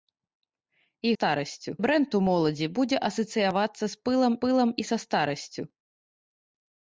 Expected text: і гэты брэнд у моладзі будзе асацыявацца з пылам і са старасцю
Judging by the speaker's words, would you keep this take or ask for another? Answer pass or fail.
fail